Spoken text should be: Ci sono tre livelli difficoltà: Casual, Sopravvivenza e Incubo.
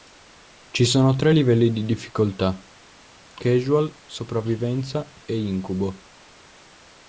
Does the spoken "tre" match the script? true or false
true